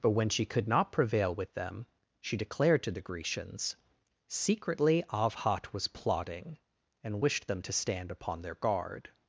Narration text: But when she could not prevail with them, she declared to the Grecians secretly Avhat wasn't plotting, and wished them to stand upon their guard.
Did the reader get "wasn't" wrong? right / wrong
wrong